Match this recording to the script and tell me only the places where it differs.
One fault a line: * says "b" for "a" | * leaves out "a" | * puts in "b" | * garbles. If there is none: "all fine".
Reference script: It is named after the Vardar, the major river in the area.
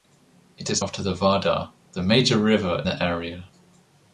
* leaves out "named"
* leaves out "in"